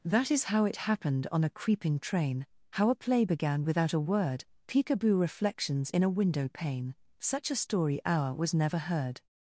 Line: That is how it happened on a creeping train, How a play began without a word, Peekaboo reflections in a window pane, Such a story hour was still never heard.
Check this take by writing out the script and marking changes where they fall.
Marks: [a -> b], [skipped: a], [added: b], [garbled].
That is how it happened on a creeping train, How a play began without a word, Peekaboo reflections in a window pane, Such a story hour was [skipped: still] never heard.